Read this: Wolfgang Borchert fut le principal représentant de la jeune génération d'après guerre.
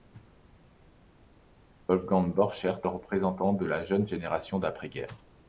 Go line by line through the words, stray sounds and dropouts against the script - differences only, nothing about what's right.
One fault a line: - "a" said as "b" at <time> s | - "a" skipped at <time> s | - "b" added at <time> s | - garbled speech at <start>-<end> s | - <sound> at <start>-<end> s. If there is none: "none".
- "fut le principal" skipped at 2.8 s